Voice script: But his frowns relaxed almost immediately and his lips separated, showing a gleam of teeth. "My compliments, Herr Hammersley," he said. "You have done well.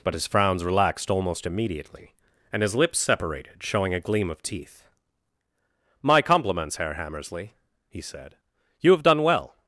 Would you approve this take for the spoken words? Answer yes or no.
yes